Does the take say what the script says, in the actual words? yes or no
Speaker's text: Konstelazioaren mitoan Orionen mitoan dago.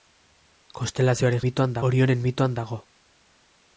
yes